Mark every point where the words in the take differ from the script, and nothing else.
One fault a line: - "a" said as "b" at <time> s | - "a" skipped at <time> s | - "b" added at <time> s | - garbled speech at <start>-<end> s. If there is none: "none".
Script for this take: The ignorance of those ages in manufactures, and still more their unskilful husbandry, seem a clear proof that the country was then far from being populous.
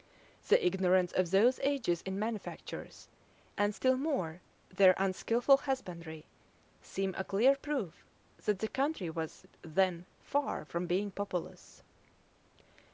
none